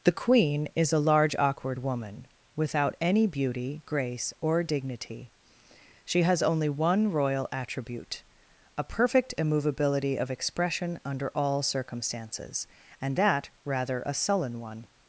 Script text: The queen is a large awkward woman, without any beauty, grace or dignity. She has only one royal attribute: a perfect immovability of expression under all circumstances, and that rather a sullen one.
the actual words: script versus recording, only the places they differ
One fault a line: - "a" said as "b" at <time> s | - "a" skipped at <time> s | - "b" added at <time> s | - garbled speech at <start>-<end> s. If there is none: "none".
none